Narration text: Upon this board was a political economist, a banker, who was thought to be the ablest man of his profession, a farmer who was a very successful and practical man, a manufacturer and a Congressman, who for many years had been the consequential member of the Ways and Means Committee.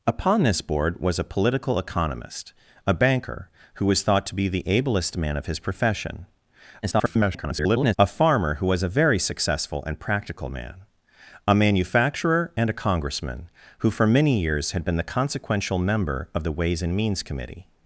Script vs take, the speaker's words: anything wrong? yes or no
yes